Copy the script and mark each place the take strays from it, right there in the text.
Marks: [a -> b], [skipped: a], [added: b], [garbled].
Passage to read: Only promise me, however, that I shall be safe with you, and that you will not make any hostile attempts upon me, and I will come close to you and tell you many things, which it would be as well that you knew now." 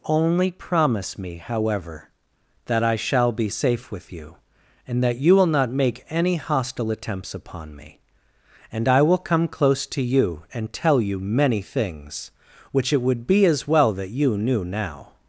Only promise me, however, that I shall be safe with you, and that you will not make any hostile attempts upon me, and I will come close to you and tell you many things, which it would be as well that you knew now."